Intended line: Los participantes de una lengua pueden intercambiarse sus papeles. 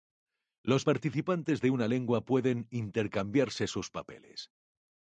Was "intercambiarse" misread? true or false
false